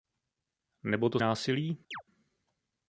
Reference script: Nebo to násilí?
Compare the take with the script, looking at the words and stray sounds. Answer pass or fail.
fail